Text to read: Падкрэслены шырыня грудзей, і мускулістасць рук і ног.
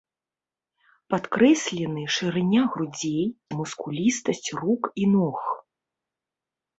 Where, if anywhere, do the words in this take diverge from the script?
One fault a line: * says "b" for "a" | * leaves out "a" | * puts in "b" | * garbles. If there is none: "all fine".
all fine